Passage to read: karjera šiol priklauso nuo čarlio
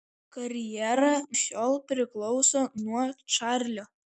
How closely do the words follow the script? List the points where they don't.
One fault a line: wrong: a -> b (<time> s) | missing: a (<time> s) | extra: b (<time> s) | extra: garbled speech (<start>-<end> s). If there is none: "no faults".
no faults